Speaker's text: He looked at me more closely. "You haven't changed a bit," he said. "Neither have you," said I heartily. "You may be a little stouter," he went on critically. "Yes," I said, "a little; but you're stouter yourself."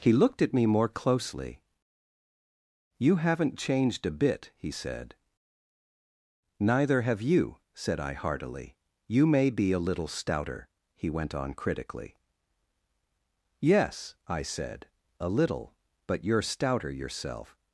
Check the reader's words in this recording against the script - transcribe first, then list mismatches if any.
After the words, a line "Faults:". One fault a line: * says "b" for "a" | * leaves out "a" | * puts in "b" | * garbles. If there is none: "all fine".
He looked at me more closely. "You haven't changed a bit," he said. "Neither have you," said I heartily. "You may be a little stouter," he went on critically. "Yes," I said, "a little; but you're stouter yourself."
Faults:
all fine